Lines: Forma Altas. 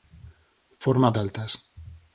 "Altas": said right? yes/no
yes